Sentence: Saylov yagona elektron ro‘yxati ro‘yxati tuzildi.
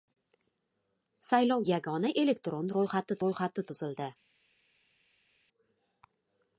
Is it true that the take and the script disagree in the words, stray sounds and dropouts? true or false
false